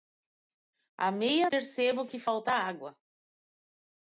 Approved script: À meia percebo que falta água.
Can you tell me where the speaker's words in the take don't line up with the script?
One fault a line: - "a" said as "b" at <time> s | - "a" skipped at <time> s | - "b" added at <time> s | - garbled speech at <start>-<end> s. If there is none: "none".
none